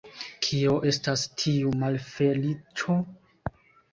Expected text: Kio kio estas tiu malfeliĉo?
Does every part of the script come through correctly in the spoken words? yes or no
no